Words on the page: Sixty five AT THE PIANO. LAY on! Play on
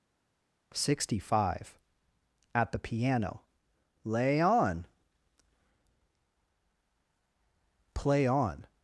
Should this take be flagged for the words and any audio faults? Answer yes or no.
no